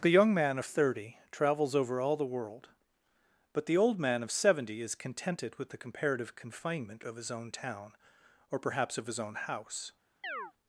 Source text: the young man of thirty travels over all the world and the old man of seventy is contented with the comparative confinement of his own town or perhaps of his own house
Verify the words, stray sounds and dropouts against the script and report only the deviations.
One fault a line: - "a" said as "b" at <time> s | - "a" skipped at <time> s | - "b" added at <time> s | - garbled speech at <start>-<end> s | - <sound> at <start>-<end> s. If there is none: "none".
- "and" said as "but" at 3.5 s
- chirp at 10.2-10.5 s